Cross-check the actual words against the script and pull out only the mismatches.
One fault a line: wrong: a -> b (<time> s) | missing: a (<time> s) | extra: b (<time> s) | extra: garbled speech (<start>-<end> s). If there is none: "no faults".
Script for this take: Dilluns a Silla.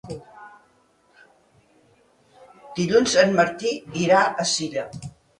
extra: en Martí irà (3.2 s)